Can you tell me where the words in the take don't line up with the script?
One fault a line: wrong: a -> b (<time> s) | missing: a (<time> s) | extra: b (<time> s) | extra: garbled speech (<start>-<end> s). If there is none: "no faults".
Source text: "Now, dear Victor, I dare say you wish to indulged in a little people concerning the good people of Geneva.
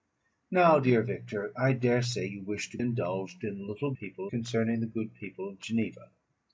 no faults